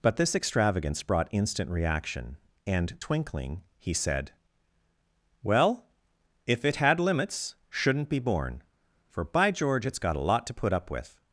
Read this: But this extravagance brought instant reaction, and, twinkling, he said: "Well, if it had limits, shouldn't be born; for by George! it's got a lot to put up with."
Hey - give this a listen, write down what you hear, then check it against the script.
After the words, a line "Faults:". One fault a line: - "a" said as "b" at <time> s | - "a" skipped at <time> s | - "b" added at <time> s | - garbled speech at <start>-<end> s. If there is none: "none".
But this extravagance brought instant reaction, and, twinkling, he said: "Well, if it had limits, shouldn't be born; for by George! it's got a lot to put up with."
Faults:
none